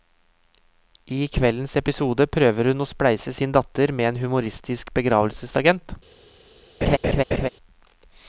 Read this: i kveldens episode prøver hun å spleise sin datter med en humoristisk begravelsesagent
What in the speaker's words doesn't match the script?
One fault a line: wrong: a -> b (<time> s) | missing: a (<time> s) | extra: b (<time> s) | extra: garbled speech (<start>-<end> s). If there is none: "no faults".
no faults